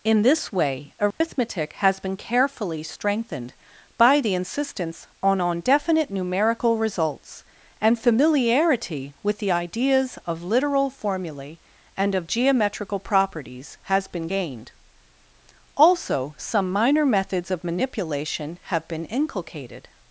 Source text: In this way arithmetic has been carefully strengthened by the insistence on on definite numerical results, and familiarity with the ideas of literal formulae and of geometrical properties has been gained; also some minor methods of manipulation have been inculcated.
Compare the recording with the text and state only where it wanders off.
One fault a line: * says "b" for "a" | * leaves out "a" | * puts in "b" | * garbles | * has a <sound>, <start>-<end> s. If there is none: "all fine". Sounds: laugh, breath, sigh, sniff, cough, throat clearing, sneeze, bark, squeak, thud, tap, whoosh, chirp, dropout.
* has a dropout, 1.1-1.2 s